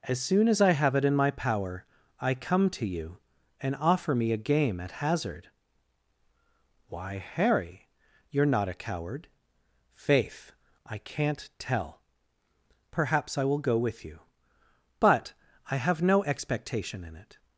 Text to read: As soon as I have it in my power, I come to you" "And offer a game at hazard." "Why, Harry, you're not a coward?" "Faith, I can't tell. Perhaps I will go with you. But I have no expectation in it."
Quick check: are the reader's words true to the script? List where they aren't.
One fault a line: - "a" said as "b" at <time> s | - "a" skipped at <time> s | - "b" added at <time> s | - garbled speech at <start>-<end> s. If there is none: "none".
- "me" added at 4.2 s